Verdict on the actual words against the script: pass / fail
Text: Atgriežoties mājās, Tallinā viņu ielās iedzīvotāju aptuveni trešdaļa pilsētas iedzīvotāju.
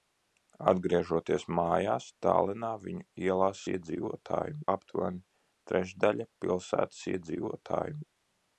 pass